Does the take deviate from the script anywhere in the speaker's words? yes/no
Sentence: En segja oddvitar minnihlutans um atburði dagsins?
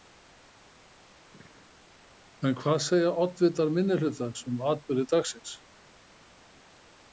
yes